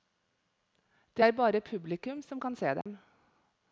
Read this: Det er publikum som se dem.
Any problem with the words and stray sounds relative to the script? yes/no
yes